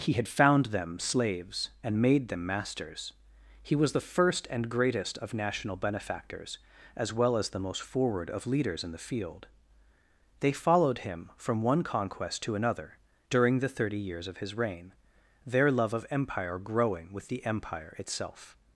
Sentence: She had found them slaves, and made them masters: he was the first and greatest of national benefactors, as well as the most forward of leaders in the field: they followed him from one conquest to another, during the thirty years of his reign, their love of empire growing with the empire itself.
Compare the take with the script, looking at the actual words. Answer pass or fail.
fail